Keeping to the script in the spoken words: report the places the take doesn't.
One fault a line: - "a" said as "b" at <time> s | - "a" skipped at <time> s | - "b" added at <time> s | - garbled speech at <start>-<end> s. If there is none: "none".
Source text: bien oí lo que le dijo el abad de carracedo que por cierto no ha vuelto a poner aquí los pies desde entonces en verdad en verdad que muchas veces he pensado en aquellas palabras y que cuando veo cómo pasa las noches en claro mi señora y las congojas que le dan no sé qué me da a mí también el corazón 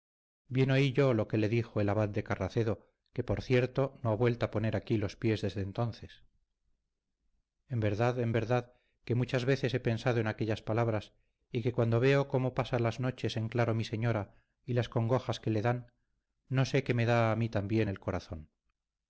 - "yo" added at 0.9 s